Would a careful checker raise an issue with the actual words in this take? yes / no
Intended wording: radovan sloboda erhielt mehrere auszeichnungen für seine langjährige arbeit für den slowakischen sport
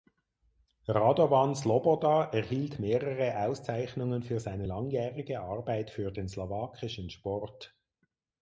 no